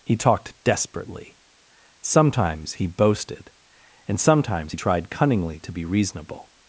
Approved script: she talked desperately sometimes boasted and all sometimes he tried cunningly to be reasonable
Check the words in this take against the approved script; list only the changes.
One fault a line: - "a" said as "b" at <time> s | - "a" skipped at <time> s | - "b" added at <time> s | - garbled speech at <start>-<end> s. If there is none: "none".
- "she" said as "he" at 0.0 s
- "he" added at 2.7 s
- "all" skipped at 4.2 s